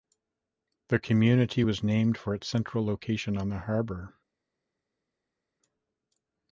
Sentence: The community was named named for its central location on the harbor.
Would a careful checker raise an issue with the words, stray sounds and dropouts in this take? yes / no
yes